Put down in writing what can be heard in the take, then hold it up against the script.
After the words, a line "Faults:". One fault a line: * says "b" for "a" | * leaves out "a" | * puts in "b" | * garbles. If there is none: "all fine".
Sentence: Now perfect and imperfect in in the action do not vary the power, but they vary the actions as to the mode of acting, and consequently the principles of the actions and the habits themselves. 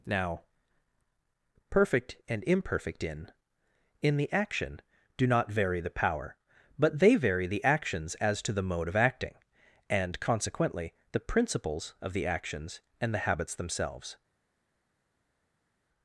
Now perfect and imperfect in in the action do not vary the power, but they vary the actions as to the mode of acting, and consequently the principles of the actions and the habits themselves.
Faults:
all fine